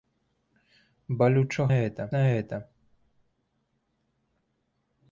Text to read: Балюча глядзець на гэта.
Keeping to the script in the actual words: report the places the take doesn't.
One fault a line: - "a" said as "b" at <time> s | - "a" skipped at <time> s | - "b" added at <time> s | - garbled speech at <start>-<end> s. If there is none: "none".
- "глядзець" said as "гэта" at 1.8 s